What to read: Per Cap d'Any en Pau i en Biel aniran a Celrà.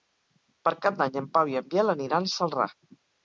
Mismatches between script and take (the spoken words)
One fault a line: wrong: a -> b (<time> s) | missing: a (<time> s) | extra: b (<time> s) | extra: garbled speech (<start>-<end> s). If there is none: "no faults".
no faults